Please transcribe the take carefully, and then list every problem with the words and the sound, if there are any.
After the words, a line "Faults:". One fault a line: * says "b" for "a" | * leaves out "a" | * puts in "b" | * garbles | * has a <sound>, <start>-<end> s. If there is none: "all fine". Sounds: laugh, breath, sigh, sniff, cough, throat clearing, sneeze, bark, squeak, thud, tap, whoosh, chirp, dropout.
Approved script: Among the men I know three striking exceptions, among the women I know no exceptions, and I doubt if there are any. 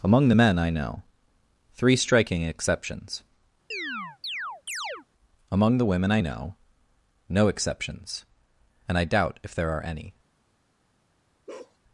Among the men I know three striking exceptions, among the women I know no exceptions, and I doubt if there are any.
Faults:
* has a chirp, 3.7-5.1 s
* has a bark, 11.5-11.8 s